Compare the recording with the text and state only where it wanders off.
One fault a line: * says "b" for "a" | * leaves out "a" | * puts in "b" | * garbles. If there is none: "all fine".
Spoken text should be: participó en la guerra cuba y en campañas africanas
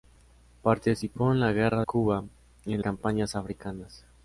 all fine